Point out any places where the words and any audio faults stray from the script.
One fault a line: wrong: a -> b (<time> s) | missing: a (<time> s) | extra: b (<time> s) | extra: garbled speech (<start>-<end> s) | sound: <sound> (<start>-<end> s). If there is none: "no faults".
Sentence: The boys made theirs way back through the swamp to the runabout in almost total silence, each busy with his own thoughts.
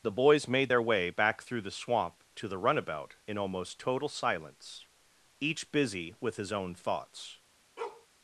wrong: theirs -> their (0.7 s)
sound: bark (7.8-8.1 s)